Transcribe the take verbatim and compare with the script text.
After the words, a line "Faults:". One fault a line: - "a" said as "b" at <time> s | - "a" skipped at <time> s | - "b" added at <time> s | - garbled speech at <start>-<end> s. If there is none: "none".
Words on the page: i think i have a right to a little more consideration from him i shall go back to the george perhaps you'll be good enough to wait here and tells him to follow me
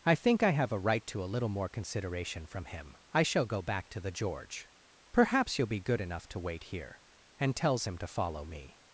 i think i have a right to a little more consideration from him i shall go back to the george perhaps you'll be good enough to wait here and tells him to follow me
Faults:
none